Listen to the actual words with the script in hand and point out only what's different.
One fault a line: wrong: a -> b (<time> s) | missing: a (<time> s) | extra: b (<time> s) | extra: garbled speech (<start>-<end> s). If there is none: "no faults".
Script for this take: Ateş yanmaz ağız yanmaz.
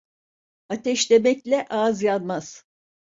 wrong: yanmaz -> demekle (1.1 s)